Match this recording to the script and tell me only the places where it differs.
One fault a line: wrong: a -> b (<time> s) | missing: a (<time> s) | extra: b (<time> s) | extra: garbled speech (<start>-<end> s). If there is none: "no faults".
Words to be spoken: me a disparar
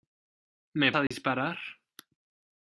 no faults